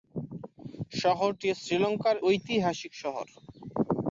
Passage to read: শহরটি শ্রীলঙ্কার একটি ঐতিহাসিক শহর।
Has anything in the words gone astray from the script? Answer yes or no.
yes